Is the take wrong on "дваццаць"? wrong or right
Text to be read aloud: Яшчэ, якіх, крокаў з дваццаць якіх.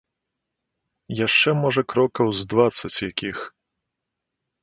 right